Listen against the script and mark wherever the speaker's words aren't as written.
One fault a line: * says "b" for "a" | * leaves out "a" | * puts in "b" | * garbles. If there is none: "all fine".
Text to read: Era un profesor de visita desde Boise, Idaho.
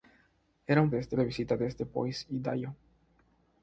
* says "desde" for "profesor"